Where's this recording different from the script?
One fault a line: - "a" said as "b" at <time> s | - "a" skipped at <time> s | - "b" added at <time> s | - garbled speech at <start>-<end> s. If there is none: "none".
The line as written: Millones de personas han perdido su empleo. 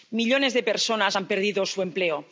none